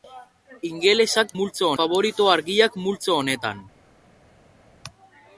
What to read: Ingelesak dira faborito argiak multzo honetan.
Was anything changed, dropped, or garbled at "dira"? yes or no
yes